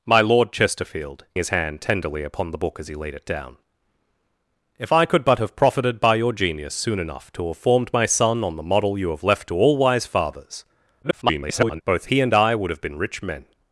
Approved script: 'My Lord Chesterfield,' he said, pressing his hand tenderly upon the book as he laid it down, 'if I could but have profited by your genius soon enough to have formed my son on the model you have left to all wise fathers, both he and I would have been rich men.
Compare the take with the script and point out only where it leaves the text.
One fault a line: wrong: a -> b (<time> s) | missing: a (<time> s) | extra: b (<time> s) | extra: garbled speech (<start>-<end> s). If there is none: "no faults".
missing: he said pressing (1.2 s)
extra: garbled speech (11.0-11.8 s)